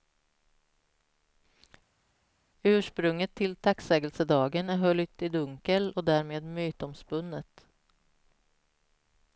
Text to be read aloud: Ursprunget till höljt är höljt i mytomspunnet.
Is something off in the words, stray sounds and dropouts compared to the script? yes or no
yes